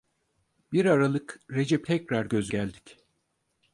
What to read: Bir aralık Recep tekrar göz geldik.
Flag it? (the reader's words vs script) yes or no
no